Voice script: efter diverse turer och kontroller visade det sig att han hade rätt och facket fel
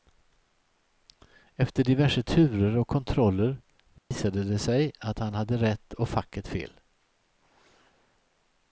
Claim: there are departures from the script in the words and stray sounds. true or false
true